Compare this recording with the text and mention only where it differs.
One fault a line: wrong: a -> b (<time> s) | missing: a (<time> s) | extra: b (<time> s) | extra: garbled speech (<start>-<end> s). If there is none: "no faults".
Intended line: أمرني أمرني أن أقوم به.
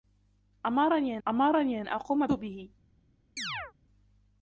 no faults